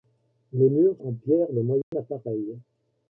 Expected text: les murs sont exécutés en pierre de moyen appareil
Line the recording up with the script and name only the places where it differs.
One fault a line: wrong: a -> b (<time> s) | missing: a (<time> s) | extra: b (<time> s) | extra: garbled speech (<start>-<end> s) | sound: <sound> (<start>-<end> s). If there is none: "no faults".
missing: sont exécutés (1.0 s)
sound: dropout (1.8-1.9 s)